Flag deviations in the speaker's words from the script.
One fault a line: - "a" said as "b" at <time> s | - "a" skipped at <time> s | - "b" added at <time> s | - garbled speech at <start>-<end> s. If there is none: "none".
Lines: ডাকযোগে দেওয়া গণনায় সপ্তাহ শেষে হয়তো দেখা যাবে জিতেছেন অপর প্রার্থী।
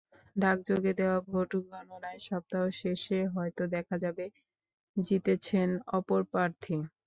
- "ভোট" added at 1.2 s